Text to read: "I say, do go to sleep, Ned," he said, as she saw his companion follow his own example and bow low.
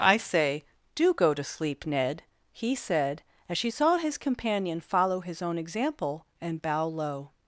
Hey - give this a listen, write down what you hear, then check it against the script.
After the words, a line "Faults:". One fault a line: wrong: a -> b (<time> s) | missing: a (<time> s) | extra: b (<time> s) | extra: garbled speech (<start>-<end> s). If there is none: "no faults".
"I say, do go to sleep, Ned," he said, as she saw his companion follow his own example and bow low.
Faults:
no faults